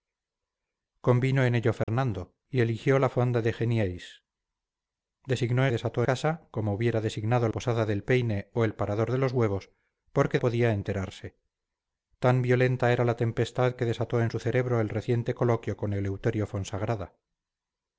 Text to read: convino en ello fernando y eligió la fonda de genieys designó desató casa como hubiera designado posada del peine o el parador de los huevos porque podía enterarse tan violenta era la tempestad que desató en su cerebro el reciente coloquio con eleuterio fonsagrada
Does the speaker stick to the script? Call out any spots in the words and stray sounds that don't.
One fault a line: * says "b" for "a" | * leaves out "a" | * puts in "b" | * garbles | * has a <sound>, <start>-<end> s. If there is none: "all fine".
* has a dropout, 1.8-1.9 s